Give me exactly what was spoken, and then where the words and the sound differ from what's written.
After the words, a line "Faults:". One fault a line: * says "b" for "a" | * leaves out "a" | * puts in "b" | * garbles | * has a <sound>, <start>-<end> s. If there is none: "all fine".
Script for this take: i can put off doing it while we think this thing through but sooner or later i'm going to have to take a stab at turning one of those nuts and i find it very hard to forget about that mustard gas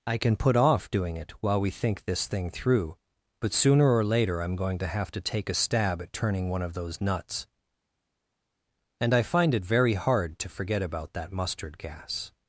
i can put off doing it while we think this thing through but sooner or later i'm going to have to take a stab at turning one of those nuts and i find it very hard to forget about that mustard gas
Faults:
all fine